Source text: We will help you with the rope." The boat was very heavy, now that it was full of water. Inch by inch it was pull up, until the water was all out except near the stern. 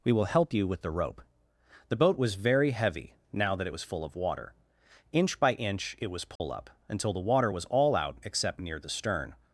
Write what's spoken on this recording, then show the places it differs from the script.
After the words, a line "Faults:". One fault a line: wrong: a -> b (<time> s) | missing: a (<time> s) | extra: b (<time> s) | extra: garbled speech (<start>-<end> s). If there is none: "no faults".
We will help you with the rope." The boat was very heavy, now that it was full of water. Inch by inch it was pull up, until the water was all out except near the stern.
Faults:
no faults